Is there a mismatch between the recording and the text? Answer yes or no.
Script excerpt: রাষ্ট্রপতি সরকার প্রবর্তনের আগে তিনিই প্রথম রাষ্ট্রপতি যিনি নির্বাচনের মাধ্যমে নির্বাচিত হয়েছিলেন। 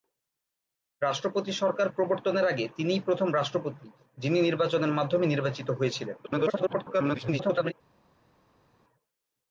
yes